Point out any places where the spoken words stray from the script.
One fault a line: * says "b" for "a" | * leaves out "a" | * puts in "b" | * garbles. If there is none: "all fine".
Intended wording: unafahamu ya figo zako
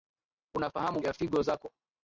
all fine